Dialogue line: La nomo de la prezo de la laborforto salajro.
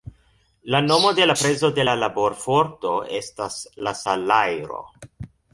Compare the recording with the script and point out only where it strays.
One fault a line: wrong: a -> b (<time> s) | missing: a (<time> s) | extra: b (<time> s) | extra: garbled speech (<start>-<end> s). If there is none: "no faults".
extra: estas la (3.2 s)